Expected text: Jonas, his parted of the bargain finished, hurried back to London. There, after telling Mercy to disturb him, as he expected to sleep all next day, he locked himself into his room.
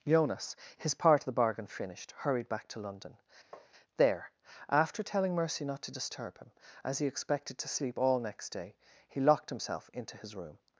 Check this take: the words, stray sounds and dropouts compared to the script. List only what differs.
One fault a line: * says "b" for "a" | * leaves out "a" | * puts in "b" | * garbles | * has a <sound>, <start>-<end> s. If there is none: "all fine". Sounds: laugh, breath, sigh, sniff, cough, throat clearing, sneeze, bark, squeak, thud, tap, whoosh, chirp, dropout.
* says "part" for "parted"
* has a tap, 3.5-3.7 s
* puts in "not"